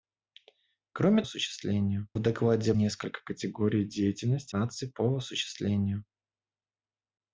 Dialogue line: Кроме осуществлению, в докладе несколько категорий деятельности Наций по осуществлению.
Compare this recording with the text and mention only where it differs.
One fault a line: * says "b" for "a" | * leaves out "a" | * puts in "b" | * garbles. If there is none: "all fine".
all fine